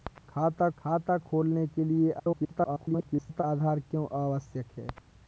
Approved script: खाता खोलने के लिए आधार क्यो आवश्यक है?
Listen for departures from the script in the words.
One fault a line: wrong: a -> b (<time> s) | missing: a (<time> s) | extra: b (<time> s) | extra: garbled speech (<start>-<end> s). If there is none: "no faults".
extra: खाता (0.8 s)
extra: garbled speech (2.2-3.4 s)